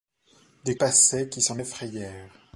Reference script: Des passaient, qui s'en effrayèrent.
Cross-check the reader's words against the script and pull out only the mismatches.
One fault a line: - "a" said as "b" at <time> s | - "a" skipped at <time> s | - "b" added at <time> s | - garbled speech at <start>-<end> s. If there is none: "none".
none